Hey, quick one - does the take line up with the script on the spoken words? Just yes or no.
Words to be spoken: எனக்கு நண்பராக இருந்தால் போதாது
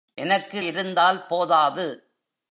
no